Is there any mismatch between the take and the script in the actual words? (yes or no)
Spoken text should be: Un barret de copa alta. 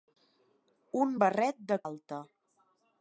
yes